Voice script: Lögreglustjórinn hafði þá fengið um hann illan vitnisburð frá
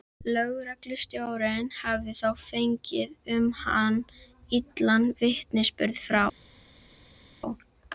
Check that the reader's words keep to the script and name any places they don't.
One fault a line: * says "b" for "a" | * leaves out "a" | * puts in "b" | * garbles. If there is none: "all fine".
all fine